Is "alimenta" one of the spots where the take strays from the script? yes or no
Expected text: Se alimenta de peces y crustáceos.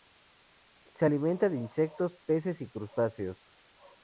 no